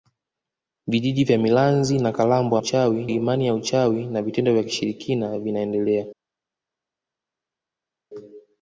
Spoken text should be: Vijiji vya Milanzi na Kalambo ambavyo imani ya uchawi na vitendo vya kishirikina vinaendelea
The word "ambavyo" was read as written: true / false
false